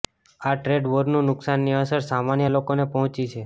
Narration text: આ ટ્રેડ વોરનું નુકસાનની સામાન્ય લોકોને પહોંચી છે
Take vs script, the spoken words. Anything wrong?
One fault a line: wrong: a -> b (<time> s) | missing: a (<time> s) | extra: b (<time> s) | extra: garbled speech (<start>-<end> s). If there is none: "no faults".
extra: અસર (1.8 s)